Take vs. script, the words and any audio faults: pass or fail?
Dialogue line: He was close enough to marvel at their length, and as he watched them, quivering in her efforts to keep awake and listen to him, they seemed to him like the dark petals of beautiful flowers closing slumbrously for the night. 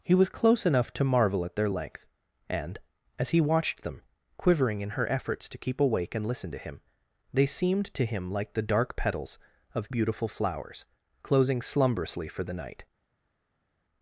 pass